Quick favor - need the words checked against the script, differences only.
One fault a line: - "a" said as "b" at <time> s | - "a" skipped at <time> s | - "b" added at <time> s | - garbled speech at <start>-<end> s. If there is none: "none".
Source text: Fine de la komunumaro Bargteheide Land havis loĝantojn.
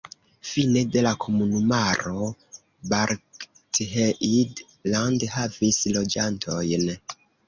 none